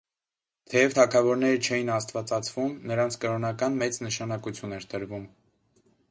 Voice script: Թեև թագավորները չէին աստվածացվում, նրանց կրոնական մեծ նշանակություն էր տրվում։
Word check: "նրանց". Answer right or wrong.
right